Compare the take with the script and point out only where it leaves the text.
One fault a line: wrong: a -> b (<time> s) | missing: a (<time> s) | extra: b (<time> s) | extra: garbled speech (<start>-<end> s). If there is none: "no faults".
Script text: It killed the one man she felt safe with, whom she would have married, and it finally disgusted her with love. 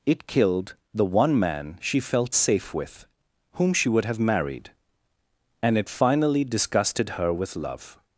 no faults